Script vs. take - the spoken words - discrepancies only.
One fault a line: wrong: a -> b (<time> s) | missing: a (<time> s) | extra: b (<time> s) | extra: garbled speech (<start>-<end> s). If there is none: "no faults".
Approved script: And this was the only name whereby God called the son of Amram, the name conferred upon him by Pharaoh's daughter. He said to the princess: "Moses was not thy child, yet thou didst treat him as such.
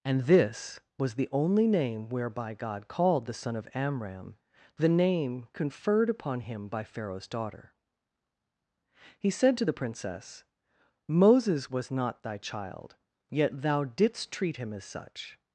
no faults